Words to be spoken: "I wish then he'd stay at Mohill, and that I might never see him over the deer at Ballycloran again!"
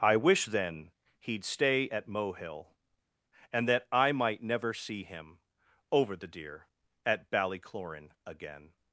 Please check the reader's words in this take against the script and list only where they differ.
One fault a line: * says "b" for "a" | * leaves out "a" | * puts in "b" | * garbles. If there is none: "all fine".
all fine